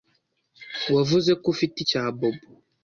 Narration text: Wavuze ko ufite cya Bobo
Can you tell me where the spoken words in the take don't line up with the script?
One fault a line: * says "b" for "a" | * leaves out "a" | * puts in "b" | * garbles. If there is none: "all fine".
all fine